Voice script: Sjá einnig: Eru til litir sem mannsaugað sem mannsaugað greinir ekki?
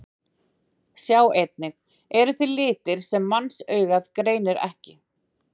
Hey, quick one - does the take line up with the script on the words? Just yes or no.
no